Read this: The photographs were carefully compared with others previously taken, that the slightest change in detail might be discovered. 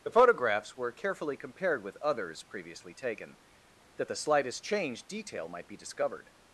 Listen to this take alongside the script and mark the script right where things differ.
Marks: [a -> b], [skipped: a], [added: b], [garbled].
The photographs were carefully compared with others previously taken, that the slightest change [skipped: in] detail might be discovered.